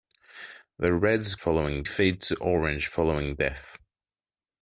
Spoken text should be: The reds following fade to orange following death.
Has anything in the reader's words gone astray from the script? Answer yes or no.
no